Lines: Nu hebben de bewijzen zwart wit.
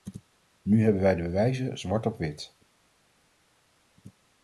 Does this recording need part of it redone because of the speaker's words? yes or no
yes